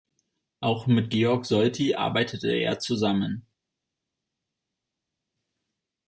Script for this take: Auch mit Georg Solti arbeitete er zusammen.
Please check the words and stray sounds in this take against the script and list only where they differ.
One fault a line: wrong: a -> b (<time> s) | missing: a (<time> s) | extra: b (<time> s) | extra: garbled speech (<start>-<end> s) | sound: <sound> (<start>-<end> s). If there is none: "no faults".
no faults